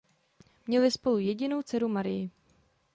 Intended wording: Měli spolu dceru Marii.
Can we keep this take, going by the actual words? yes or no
no